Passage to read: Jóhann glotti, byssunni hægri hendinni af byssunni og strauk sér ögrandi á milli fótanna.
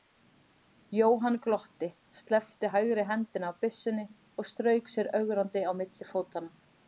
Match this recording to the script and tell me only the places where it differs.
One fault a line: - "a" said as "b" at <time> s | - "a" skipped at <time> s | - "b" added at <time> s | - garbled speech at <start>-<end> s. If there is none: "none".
- "byssunni" said as "sleppti" at 2.2 s